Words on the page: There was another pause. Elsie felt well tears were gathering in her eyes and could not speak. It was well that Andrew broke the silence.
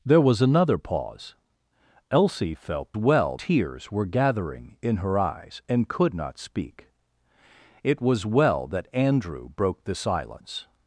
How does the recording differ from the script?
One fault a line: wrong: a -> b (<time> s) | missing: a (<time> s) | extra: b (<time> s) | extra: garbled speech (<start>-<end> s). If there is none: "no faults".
no faults